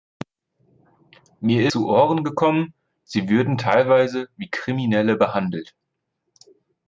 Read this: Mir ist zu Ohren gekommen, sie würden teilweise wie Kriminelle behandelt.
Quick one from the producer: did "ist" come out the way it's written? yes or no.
no